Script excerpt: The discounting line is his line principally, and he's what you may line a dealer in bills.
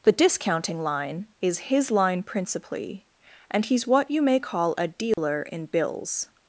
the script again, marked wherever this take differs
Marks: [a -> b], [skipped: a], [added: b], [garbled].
The discounting line is his line principally, and he's what you may [line -> call] a dealer in bills.